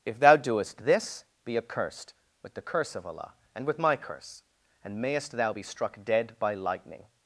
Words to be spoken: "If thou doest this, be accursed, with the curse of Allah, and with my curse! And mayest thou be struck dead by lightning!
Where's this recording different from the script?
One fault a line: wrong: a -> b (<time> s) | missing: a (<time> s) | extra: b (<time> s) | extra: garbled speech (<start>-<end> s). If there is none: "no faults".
no faults